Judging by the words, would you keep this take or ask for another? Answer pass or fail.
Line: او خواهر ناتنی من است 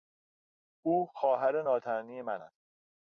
pass